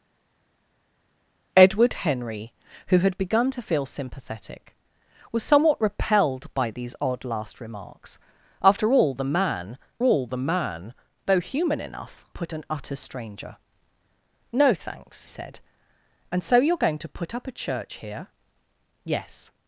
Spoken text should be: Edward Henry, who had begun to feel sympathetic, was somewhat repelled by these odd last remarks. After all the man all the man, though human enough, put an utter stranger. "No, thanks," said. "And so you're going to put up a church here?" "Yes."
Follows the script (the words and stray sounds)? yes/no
yes